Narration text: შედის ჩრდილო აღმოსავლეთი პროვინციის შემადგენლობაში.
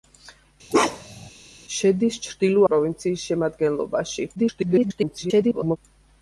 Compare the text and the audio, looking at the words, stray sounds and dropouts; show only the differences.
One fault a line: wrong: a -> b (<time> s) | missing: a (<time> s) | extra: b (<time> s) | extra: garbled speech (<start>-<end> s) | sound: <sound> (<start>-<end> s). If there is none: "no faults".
sound: bark (0.7-1.3 s)
missing: აღმოსავლეთი (2.6 s)
extra: garbled speech (4.4-5.8 s)